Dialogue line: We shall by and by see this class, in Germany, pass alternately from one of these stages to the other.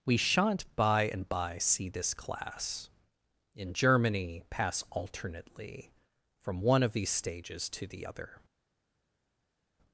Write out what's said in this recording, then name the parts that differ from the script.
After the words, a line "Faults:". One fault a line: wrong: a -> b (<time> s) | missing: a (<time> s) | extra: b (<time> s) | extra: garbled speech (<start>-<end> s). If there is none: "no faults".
We shan't by and by see this class, in Germany, pass alternately from one of these stages to the other.
Faults:
wrong: shall -> shan't (0.2 s)